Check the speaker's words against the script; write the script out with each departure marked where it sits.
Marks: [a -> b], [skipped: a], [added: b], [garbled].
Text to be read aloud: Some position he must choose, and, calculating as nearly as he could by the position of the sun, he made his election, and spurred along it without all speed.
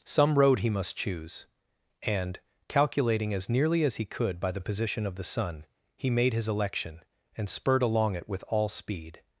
Some [position -> road] he must choose, and, calculating as nearly as he could by the position of the sun, he made his election, and spurred along it [without -> with] all speed.